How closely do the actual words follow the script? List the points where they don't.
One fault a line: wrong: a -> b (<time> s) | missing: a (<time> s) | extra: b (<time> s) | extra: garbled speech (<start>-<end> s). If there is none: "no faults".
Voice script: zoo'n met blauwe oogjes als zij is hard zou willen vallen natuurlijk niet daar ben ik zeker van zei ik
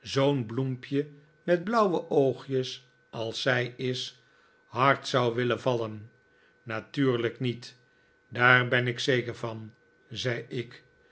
extra: bloempje (0.5 s)